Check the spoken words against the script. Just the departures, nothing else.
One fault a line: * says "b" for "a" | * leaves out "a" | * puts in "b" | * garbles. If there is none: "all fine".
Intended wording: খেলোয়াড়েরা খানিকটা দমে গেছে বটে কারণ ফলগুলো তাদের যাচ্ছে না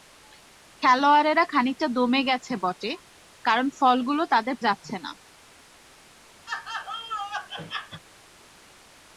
all fine